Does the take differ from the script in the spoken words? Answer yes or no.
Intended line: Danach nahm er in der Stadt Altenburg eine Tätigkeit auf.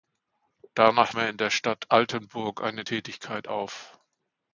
yes